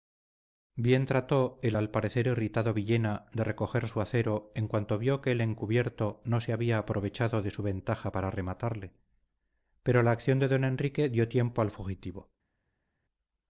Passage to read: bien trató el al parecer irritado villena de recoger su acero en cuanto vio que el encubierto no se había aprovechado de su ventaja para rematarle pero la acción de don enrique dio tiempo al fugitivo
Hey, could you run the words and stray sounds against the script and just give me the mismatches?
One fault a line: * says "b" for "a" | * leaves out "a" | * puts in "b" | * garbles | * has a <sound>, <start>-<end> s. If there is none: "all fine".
all fine